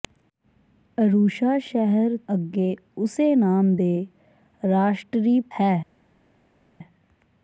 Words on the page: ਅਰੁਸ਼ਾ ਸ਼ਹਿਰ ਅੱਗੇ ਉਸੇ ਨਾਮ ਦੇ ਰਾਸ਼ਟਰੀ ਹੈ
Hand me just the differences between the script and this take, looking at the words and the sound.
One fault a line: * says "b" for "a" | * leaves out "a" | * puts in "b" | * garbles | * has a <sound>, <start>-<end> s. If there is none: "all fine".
all fine